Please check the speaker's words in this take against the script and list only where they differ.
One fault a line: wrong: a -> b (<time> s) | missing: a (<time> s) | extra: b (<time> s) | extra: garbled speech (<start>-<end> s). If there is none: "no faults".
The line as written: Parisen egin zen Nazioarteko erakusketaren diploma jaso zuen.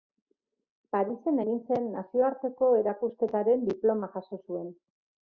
no faults